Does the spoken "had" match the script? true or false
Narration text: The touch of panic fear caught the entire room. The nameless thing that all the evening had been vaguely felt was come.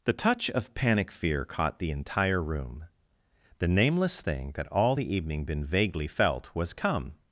false